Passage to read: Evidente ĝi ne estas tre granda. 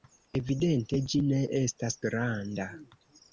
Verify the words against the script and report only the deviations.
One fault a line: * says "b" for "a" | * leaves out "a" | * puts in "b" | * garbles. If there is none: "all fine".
* leaves out "tre"